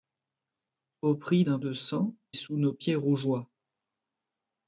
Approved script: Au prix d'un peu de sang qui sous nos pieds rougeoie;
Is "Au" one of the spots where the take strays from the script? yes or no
no